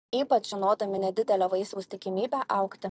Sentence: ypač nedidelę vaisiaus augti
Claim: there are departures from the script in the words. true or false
true